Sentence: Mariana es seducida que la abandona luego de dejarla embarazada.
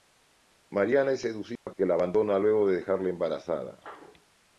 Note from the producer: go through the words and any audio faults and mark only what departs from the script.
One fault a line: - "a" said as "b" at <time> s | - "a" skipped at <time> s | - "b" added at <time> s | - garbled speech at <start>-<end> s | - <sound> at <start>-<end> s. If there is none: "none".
- dropout at 1.6-1.7 s